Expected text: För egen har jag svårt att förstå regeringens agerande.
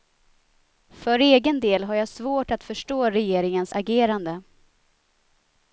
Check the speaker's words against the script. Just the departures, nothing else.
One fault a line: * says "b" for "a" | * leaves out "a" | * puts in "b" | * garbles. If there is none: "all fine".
* puts in "del"